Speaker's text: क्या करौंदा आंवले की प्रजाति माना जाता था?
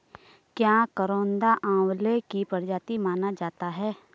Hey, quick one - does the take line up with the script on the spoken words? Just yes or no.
no